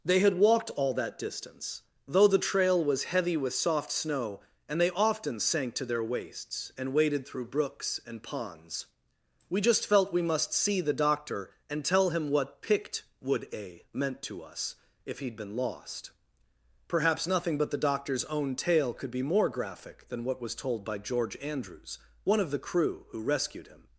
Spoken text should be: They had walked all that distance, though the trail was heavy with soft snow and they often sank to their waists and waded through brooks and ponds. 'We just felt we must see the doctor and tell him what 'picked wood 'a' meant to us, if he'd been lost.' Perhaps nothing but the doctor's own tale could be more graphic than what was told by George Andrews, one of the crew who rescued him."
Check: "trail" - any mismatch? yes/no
no